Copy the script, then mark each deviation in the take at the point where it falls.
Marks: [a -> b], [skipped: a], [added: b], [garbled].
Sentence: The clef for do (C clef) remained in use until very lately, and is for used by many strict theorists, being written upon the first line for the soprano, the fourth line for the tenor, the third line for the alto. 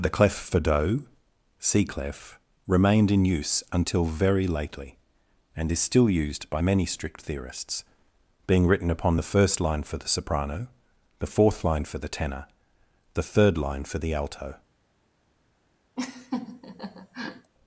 The clef for do (C clef) remained in use until very lately, and is [for -> still] used by many strict theorists, being written upon the first line for the soprano, the fourth line for the tenor, the third line for the alto.